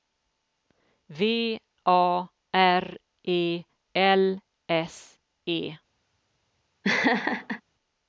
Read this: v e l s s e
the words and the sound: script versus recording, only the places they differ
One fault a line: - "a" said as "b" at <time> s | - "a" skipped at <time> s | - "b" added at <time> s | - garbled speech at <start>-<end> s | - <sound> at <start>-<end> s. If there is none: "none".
- "a r" added at 1.9 s
- "s" skipped at 5.2 s
- laugh at 6.8-7.6 s